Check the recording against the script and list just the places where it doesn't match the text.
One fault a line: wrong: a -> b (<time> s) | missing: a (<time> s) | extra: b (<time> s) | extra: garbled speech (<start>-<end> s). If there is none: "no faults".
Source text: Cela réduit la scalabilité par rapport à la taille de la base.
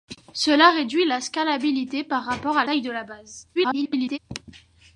missing: la (2.6 s)
extra: garbled speech (3.6-4.2 s)